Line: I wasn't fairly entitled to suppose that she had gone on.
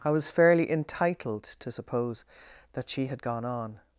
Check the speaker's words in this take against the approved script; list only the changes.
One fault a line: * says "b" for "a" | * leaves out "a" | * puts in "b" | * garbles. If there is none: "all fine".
* says "was" for "wasn't"